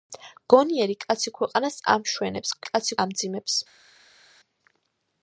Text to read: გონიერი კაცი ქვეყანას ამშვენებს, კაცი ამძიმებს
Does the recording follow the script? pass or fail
pass